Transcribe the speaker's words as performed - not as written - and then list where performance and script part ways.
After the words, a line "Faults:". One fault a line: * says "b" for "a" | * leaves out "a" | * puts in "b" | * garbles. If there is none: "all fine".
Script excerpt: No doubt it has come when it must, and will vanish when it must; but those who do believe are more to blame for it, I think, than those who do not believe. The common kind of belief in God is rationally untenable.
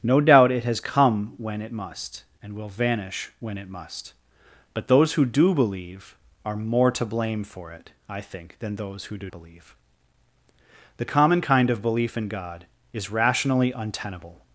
No doubt it has come when it must, and will vanish when it must; but those who do believe are more to blame for it, I think, than those who do believe. The common kind of belief in God is rationally untenable.
Faults:
* leaves out "not"